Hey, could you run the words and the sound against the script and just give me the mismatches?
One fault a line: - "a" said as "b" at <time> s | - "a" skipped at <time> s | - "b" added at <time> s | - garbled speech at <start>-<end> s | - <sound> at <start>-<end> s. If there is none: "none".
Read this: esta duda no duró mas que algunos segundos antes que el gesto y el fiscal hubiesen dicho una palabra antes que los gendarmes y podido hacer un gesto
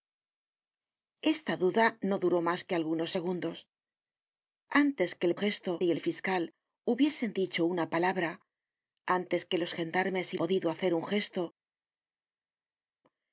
none